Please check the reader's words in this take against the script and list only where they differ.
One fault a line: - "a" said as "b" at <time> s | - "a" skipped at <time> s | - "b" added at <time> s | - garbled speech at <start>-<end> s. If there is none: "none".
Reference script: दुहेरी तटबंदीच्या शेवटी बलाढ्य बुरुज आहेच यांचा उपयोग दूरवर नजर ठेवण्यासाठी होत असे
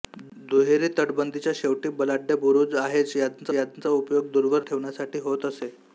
- "यांचा" added at 3.5 s
- "नजर" skipped at 4.6 s